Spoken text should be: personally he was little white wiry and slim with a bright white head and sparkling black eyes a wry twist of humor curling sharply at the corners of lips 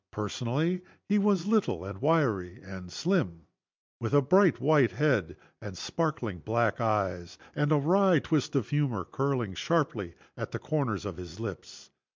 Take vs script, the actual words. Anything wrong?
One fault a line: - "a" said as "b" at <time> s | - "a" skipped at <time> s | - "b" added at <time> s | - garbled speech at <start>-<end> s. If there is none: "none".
- "white" said as "and" at 1.9 s
- "and" added at 7.5 s
- "his" added at 11.2 s